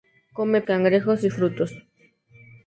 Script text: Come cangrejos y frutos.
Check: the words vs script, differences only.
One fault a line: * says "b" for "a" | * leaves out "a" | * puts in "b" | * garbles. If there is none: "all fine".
all fine